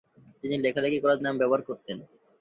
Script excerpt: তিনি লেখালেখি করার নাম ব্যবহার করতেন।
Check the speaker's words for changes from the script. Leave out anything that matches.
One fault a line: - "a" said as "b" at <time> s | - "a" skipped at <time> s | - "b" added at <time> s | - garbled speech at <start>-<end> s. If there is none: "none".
none